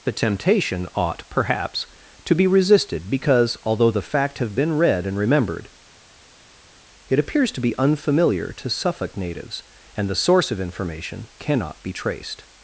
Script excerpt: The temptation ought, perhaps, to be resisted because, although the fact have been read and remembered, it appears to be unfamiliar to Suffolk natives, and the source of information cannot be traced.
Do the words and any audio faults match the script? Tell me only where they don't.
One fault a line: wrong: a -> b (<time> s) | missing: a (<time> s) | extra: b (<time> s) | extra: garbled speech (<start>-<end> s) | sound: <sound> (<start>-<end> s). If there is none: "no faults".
no faults